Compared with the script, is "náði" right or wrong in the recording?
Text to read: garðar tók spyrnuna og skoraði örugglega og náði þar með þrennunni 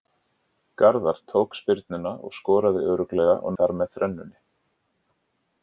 wrong